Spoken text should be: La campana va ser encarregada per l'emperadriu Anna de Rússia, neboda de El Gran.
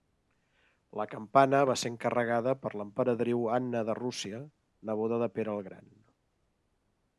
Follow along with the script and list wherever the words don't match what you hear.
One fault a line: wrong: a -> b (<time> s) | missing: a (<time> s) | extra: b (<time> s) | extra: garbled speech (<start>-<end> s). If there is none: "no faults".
extra: Pere (5.4 s)